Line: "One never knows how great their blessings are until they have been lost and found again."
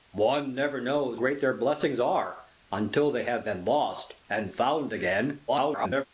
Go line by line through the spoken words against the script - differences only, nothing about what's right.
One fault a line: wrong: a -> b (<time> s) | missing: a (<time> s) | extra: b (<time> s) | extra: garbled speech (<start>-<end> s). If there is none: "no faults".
missing: how (1.2 s)
extra: garbled speech (5.5-6.1 s)